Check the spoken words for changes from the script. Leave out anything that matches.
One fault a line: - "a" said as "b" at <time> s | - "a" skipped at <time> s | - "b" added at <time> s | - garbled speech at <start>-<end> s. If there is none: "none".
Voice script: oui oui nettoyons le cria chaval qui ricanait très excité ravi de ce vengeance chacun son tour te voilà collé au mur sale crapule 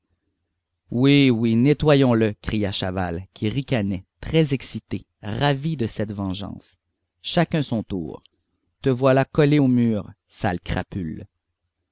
- "ce" said as "cette" at 5.8 s